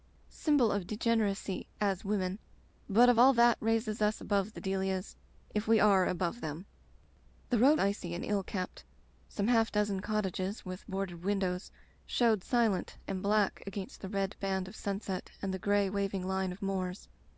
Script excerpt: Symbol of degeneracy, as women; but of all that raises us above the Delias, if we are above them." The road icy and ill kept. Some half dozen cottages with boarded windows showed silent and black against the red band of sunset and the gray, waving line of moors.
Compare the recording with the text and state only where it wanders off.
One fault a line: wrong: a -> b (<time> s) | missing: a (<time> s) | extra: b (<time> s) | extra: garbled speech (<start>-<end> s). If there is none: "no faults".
no faults